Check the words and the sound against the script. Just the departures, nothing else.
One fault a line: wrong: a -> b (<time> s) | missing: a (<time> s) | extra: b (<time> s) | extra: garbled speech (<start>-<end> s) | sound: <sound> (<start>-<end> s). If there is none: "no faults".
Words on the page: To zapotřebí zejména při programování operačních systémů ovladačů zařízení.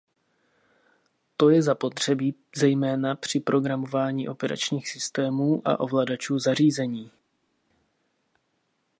extra: je (1.5 s)
extra: a (5.7 s)